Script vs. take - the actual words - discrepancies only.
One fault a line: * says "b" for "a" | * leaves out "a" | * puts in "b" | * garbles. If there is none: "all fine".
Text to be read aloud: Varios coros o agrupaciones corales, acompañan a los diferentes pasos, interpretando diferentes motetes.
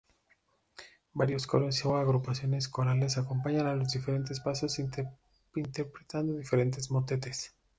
all fine